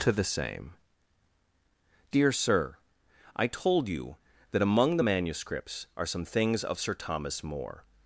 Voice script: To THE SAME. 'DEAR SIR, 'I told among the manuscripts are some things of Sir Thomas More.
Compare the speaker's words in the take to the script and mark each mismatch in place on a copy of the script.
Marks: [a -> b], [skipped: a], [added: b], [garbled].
To THE SAME. 'DEAR SIR, 'I told [added: you that] among the manuscripts are some things of Sir Thomas More.